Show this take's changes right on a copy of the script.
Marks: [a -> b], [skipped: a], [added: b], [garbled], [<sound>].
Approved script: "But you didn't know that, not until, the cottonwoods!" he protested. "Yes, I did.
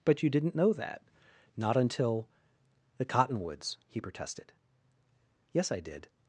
"But you didn't know that, not until, the cottonwoods!" he protested. "Yes, I did.